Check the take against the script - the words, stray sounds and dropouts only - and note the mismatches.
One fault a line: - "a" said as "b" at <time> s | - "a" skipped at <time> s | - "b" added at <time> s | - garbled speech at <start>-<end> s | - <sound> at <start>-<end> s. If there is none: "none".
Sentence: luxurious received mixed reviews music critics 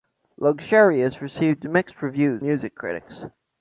none